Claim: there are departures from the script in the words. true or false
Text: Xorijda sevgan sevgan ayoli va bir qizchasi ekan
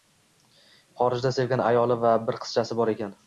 true